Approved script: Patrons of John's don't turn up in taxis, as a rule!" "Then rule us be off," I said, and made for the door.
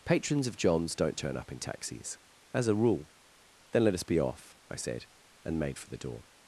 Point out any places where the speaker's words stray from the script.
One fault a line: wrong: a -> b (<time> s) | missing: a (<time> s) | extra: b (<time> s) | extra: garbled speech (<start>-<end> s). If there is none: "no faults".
wrong: rule -> let (3.8 s)